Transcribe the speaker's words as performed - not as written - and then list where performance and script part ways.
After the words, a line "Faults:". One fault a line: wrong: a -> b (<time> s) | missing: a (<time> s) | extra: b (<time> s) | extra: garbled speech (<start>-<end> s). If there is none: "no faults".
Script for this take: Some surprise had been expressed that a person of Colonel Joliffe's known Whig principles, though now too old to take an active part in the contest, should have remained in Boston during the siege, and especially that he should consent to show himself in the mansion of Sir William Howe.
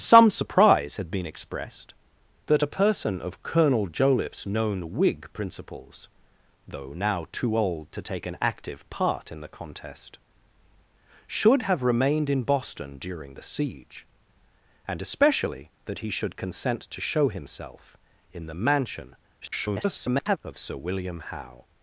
Some surprise had been expressed that a person of Colonel Joliffe's known Whig principles, though now too old to take an active part in the contest, should have remained in Boston during the siege, and especially that he should consent to show himself in the mansion [garbled] of Sir William Howe.
Faults:
extra: garbled speech (19.4-20.4 s)